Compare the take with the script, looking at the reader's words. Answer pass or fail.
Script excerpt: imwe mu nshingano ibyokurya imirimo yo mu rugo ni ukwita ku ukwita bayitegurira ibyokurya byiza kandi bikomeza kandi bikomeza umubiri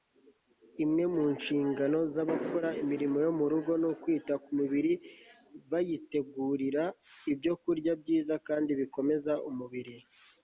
fail